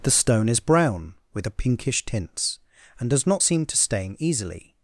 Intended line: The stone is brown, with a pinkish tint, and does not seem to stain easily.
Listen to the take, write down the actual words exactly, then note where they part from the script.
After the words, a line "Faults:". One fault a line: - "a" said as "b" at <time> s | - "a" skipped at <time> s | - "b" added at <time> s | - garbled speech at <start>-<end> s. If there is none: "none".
The stone is brown, with a pinkish tints, and does not seem to stain easily.
Faults:
- "tint" said as "tints" at 2.0 s